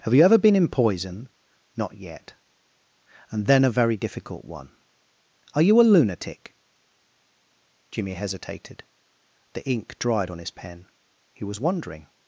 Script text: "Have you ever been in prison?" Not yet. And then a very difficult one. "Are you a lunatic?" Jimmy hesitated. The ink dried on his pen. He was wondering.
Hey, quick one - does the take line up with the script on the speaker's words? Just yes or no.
no